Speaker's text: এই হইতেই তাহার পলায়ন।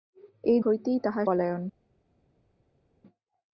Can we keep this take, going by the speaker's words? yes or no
yes